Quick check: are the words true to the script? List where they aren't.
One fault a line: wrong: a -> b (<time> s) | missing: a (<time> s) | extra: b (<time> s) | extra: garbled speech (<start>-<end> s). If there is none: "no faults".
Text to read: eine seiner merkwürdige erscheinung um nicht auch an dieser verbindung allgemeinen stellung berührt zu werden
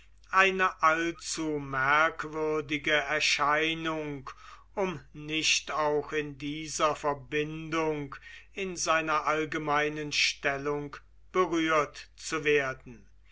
wrong: seiner -> allzu (0.8 s)
wrong: an -> in (6.1 s)
extra: in seiner (8.5 s)